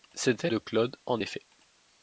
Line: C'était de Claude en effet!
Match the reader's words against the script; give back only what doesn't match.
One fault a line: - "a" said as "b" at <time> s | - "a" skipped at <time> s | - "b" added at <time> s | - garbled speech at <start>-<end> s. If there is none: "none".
none